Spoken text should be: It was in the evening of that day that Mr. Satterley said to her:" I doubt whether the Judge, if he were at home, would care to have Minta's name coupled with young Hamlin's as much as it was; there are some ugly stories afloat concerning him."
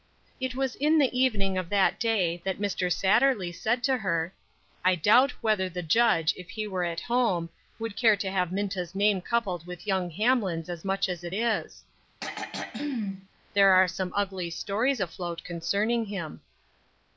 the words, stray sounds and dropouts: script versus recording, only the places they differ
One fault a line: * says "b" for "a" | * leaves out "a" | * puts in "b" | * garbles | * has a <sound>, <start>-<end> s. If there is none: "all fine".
* says "is" for "was"
* has a throat clearing, 12.2-13.3 s